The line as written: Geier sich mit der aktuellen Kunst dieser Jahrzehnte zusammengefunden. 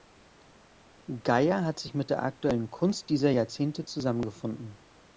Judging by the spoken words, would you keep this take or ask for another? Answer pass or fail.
fail